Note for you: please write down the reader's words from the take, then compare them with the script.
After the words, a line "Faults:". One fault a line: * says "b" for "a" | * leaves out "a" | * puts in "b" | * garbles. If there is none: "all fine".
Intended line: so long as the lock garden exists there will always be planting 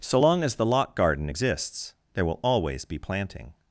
so long as the lock garden exists there will always be planting
Faults:
all fine